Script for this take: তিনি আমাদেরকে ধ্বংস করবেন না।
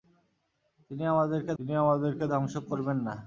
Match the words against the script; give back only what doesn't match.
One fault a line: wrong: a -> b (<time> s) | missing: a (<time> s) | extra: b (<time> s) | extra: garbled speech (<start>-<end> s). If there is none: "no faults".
extra: তিনি আমাদেরকে (1.6 s)